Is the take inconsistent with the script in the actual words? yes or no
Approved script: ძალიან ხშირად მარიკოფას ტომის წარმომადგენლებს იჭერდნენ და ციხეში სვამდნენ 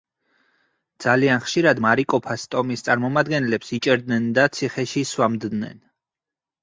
no